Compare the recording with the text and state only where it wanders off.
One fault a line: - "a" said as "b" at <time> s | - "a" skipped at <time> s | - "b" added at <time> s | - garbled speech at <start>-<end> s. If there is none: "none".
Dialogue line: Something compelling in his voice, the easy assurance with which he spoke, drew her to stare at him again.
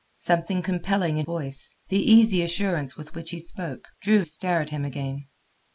- "his" skipped at 1.3 s
- "her to" skipped at 4.2 s